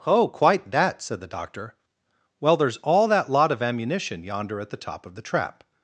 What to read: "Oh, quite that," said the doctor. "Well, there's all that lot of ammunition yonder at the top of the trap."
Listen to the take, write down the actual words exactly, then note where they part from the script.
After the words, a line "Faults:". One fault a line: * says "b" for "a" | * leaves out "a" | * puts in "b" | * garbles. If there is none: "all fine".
"Oh, quite that," said the doctor. "Well, there's all that lot of ammunition yonder at the top of the trap."
Faults:
all fine